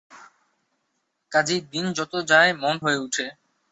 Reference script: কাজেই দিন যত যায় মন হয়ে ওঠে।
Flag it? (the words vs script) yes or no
no